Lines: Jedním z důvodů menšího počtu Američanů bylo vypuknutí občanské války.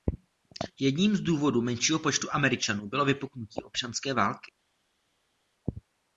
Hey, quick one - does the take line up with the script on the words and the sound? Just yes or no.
yes